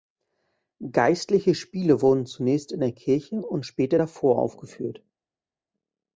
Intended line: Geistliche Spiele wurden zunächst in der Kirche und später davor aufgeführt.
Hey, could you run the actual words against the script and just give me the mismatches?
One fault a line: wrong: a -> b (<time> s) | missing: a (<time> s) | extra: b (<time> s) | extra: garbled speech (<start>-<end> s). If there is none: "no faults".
no faults